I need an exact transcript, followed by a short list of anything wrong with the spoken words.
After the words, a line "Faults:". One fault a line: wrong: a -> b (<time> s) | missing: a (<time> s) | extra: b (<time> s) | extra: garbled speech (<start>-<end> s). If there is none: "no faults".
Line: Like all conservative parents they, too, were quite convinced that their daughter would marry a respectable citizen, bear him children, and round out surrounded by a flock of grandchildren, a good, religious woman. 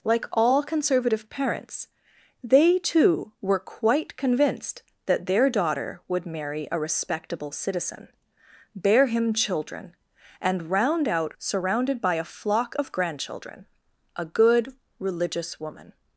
Like all conservative parents they, too, were quite convinced that their daughter would marry a respectable citizen, bear him children, and round out surrounded by a flock of grandchildren, a good, religious woman.
Faults:
no faults